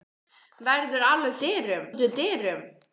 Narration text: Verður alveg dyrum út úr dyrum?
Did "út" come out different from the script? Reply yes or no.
no